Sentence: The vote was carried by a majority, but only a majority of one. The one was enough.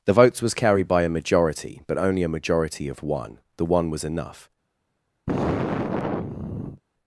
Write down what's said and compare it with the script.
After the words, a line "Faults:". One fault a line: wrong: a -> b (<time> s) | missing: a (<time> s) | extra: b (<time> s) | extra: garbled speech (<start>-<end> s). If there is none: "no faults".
The votes was carried by a majority, but only a majority of one. The one was enough.
Faults:
wrong: vote -> votes (0.1 s)